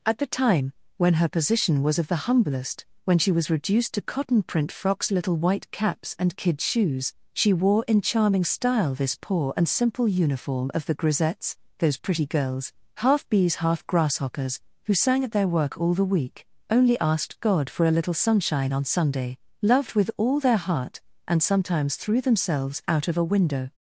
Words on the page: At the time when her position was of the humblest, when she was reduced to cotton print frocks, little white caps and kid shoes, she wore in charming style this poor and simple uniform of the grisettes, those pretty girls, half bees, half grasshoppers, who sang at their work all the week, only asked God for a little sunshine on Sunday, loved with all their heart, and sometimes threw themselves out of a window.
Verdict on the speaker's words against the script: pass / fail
pass